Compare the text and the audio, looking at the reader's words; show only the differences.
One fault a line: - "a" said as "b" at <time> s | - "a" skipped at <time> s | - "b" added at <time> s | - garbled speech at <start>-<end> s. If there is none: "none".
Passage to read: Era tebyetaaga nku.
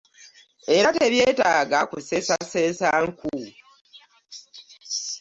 - "kuseesaseesa" added at 1.9 s